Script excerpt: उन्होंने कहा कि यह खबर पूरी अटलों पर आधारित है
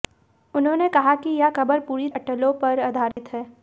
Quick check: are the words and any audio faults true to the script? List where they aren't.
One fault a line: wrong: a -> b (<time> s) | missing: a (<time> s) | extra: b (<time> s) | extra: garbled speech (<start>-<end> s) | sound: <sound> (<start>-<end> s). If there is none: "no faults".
sound: dropout (3.1-3.2 s)